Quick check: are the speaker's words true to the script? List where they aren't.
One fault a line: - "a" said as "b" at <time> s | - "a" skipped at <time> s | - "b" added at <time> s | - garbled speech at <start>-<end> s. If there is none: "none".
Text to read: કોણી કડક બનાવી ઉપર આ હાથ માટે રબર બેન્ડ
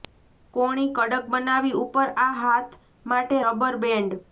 none